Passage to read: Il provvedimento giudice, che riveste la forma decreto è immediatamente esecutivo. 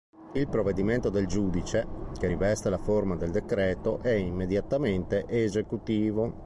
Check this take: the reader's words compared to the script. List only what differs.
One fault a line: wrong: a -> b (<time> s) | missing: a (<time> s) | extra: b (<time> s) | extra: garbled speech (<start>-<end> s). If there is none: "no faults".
extra: del (1.1 s)
extra: del (3.2 s)